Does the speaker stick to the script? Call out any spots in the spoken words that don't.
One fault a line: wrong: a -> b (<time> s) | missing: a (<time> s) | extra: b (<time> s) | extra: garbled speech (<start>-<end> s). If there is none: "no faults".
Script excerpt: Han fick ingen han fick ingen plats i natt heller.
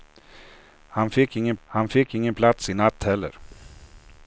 no faults